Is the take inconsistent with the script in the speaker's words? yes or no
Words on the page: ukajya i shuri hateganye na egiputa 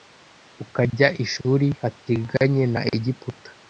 no